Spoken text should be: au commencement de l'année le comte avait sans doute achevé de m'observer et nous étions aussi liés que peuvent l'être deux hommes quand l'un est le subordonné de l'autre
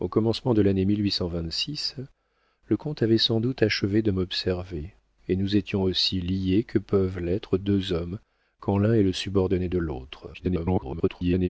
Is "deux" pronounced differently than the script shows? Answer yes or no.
no